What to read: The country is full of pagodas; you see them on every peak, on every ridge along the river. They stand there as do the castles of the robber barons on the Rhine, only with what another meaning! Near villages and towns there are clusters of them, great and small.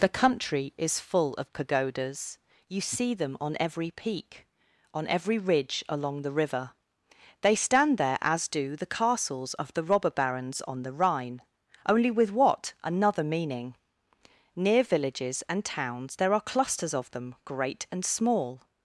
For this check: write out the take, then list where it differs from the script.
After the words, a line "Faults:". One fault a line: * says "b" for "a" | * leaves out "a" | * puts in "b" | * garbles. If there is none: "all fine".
The country is full of pagodas; you see them on every peak, on every ridge along the river. They stand there as do the castles of the robber barons on the Rhine, only with what another meaning! Near villages and towns there are clusters of them, great and small.
Faults:
all fine